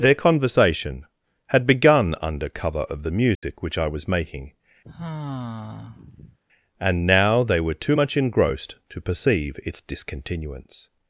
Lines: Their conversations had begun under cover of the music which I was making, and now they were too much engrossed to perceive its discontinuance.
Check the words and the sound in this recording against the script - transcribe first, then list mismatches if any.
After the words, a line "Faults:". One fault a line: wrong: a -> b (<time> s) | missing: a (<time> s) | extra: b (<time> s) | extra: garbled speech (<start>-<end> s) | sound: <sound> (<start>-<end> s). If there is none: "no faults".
Their conversation had begun under cover of the music which I was making, and now they were too much engrossed to perceive its discontinuance.
Faults:
wrong: conversations -> conversation (0.1 s)
sound: dropout (3.3-3.4 s)
sound: sigh (4.8-6.4 s)